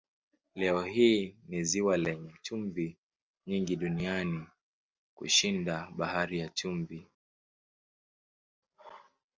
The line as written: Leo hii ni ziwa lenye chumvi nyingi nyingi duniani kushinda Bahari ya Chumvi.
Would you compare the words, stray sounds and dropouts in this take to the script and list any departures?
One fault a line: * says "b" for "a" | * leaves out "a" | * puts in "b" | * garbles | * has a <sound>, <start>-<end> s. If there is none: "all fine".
* leaves out "nyingi"